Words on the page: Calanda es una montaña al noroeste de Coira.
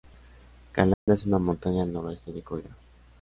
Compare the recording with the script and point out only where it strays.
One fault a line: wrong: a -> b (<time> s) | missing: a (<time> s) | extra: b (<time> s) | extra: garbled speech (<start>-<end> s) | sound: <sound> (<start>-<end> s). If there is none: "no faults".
sound: dropout (0.9-1.1 s)